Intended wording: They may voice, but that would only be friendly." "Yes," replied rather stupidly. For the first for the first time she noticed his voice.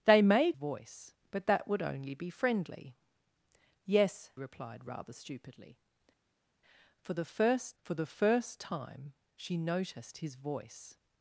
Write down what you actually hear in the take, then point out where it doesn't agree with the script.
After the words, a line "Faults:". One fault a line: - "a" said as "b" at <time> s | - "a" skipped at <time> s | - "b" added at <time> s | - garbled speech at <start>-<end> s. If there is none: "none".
They may voice, but that would only be friendly." "Yes," replied rather stupidly. For the first for the first time she noticed his voice.
Faults:
none